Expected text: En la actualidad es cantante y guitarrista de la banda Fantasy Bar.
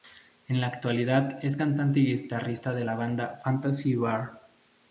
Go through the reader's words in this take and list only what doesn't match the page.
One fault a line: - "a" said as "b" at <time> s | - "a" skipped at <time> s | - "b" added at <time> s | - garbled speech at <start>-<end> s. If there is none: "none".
none